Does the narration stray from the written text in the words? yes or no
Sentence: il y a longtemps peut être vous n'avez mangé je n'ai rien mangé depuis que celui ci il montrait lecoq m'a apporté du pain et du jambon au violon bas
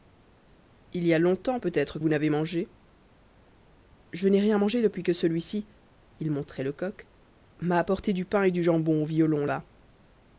no